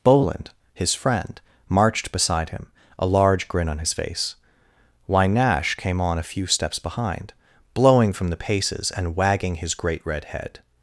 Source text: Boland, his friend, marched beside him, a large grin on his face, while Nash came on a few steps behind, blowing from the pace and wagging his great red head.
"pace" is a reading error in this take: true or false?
true